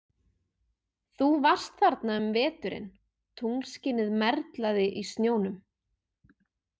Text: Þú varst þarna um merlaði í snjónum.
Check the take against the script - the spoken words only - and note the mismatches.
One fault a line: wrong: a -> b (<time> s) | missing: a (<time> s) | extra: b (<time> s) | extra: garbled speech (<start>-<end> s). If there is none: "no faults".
extra: veturinn tunglskinið (2.4 s)